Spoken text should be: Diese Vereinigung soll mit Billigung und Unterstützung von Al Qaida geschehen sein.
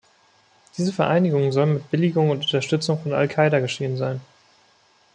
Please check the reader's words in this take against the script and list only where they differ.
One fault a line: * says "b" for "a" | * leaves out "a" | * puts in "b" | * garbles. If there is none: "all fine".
all fine